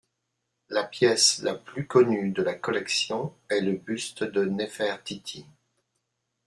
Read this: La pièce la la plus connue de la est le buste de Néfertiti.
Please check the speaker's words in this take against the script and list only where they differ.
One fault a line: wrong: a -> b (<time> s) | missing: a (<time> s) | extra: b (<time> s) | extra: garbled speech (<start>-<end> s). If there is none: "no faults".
missing: la (1.5 s)
extra: collection (2.5 s)